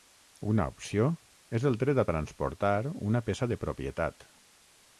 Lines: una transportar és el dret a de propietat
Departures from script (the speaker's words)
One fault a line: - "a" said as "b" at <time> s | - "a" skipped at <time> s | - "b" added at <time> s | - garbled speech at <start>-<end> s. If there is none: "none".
- "transportar" said as "opció" at 0.7 s
- "transportar una peça" added at 2.1 s